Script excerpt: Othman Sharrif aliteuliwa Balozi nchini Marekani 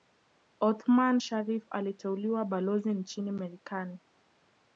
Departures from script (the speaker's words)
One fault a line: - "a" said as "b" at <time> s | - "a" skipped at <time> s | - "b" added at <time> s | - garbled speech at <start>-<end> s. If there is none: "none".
none